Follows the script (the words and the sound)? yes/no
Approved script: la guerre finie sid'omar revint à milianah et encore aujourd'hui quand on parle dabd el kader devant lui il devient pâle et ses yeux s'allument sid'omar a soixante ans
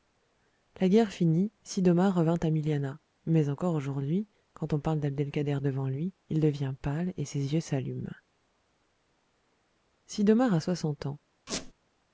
no